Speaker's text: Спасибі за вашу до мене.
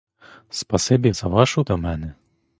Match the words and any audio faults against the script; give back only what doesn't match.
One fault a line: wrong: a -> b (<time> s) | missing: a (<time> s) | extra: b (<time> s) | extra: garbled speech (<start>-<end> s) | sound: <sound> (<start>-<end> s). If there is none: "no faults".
no faults